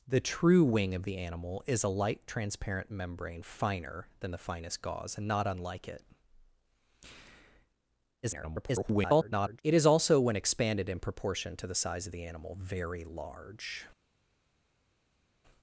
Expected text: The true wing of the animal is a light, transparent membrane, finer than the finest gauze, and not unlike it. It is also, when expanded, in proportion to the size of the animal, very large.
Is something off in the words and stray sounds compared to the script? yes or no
yes